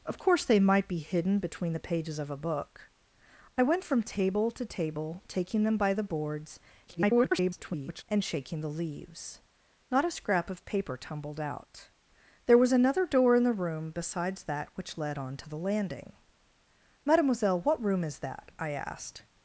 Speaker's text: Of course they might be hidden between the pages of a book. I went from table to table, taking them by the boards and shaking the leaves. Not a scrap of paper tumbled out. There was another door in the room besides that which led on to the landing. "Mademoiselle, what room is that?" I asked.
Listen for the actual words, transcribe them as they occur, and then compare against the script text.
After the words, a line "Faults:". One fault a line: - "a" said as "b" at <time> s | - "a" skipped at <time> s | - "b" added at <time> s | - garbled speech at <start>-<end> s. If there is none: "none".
Of course they might be hidden between the pages of a book. I went from table to table, taking them by the boards [garbled] and shaking the leaves. Not a scrap of paper tumbled out. There was another door in the room besides that which led on to the landing. "Mademoiselle, what room is that?" I asked.
Faults:
- garbled speech at 6.9-8.0 s